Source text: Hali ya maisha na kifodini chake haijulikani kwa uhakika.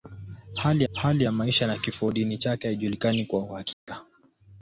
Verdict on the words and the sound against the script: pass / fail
fail